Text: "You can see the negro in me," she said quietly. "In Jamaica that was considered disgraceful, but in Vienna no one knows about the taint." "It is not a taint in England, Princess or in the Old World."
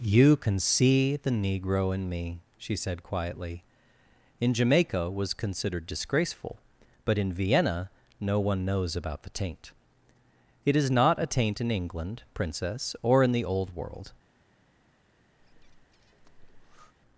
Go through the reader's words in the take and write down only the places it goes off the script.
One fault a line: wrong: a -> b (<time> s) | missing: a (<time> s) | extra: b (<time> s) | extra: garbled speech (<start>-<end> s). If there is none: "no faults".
missing: that (5.1 s)